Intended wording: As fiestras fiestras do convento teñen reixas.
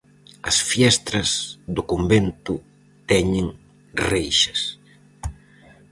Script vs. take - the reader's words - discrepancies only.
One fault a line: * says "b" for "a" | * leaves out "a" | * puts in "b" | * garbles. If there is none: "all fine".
* leaves out "fiestras"